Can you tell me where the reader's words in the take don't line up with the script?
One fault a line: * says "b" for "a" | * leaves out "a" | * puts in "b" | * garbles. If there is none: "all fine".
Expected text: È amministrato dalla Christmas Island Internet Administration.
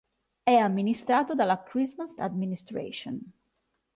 * leaves out "Island Internet"